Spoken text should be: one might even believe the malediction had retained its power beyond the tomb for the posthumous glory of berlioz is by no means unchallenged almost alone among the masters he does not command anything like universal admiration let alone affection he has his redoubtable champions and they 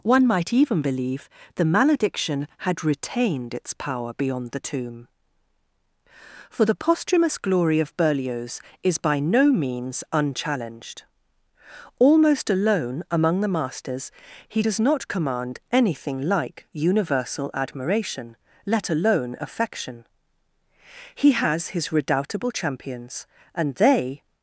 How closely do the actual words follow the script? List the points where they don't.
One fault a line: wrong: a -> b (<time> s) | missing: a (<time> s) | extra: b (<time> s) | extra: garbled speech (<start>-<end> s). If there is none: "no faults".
no faults